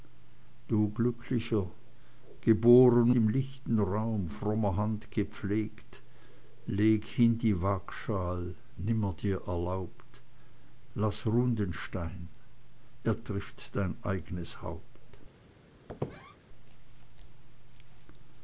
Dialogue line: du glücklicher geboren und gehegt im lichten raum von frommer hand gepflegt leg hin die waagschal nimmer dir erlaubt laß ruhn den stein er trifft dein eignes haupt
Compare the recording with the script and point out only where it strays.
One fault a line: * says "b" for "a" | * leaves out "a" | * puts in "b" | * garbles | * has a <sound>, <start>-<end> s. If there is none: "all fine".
* leaves out "und gehegt"
* leaves out "von"
* has a squeak, 15.9-16.4 s